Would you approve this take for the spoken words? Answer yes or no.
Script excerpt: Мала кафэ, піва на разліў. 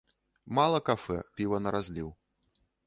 yes